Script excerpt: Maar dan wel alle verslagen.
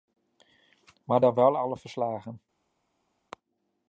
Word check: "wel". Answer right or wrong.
right